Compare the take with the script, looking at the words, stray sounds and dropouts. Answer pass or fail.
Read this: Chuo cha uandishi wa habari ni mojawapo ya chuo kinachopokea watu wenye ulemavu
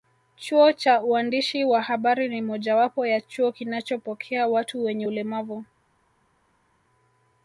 pass